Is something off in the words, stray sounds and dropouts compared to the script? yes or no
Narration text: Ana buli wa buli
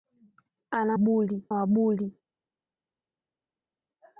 no